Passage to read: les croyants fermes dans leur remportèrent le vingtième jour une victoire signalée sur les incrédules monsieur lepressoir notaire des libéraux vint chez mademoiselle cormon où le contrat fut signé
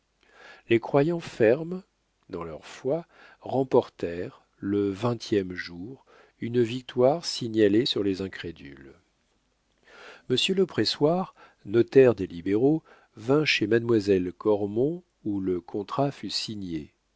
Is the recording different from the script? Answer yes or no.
yes